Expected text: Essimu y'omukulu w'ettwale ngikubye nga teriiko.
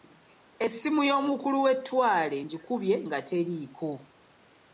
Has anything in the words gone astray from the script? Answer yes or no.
no